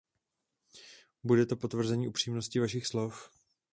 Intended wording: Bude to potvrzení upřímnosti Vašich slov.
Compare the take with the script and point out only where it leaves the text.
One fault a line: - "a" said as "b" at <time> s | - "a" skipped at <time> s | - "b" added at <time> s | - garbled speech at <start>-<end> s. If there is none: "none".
none